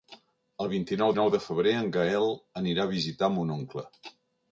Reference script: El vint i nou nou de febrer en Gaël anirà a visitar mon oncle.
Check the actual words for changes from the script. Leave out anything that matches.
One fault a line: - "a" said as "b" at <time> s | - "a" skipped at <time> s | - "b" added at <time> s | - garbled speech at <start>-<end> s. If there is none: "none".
none